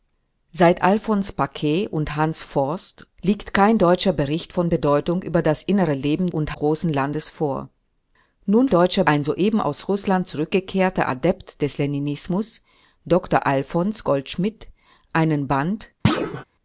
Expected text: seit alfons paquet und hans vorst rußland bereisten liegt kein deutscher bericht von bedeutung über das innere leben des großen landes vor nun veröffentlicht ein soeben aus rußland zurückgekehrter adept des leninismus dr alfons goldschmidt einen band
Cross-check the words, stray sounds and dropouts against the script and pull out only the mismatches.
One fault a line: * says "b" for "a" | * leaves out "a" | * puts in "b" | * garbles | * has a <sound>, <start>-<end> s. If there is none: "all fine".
* leaves out "rußland bereisten"
* says "und" for "des"
* says "deutscher" for "veröffentlicht"
* has a thud, 16.0-16.4 s